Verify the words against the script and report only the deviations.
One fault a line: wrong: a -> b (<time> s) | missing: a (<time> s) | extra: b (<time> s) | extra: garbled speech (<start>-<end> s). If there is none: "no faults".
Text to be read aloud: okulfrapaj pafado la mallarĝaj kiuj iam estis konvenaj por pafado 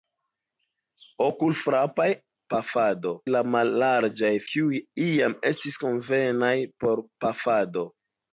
no faults